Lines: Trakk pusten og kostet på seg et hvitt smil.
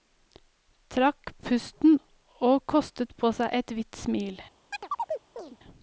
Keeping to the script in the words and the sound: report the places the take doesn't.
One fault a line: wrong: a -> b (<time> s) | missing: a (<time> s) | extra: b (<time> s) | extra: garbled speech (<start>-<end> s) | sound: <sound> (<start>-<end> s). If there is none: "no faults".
sound: chirp (4.7-5.6 s)